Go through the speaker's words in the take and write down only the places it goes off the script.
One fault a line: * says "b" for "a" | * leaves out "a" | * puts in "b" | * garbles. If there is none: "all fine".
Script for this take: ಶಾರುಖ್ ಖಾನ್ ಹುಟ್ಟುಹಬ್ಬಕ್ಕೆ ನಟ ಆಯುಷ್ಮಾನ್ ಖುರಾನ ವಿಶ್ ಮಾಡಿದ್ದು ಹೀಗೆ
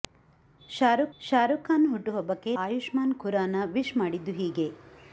* puts in "ಶಾರುಖ್"
* leaves out "ನಟ"